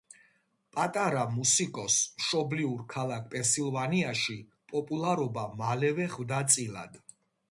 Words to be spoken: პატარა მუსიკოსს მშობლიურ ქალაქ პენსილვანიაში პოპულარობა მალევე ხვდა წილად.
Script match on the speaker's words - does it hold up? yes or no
yes